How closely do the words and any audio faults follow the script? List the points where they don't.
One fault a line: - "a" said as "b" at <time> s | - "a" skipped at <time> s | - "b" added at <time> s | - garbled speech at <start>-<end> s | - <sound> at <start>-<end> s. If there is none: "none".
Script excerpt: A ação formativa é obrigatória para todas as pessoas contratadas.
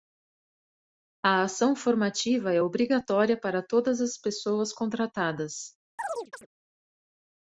- chirp at 6.0-6.5 s